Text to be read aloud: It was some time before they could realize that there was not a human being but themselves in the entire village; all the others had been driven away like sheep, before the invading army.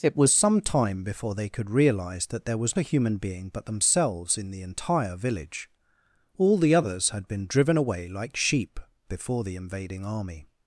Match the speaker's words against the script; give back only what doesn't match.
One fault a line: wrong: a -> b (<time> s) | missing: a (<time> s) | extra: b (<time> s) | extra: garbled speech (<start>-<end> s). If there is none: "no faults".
missing: not (2.8 s)